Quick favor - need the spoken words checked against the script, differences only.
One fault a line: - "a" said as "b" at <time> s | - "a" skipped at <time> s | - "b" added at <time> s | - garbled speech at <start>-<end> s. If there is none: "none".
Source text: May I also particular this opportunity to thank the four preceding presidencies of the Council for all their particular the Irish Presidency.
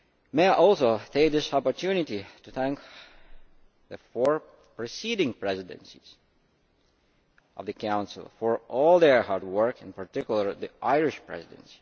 - "particular" said as "take" at 1.1 s
- "hard work in" added at 9.2 s